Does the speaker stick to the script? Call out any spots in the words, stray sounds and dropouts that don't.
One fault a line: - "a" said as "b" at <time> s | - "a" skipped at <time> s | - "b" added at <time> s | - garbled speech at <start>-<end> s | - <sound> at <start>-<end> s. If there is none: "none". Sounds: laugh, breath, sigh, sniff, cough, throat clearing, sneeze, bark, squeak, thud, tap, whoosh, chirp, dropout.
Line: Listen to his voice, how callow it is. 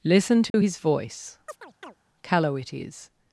- dropout at 0.5-0.5 s
- "how" skipped at 1.4 s
- chirp at 1.5-2.0 s